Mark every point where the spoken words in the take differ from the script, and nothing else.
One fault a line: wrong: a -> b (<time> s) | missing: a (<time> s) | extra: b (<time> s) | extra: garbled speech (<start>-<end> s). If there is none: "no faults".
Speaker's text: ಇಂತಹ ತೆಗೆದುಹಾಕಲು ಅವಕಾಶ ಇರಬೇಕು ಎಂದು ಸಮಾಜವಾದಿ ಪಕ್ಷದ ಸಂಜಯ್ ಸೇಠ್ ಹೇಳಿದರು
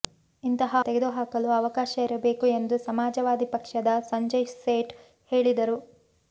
no faults